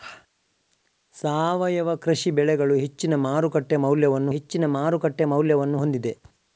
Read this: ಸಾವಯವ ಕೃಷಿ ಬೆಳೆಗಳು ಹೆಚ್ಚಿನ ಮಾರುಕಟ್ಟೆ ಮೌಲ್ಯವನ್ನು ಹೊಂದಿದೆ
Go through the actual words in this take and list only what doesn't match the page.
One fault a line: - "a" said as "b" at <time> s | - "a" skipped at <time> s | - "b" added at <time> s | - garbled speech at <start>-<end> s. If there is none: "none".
- "ಹೆಚ್ಚಿನ ಮಾರುಕಟ್ಟೆ ಮೌಲ್ಯವನ್ನು" added at 4.3 s